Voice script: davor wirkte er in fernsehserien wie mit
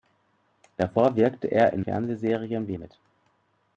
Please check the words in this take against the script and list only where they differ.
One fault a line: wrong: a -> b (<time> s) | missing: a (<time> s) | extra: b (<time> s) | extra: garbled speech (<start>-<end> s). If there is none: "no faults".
no faults